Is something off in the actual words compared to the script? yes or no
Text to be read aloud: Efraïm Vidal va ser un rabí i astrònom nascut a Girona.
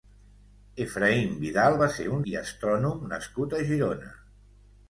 yes